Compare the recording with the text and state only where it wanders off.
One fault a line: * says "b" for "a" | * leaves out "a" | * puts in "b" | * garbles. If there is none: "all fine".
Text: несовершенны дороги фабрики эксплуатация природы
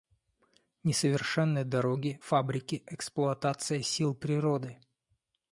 * puts in "сил"